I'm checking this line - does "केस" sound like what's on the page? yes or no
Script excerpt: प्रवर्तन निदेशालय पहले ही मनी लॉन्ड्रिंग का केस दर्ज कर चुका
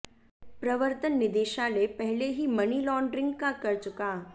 no